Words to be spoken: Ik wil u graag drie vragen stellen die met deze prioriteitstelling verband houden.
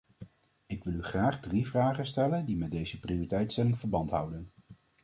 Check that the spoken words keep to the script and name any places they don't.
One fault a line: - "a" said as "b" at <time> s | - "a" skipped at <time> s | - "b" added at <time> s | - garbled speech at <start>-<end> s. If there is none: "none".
none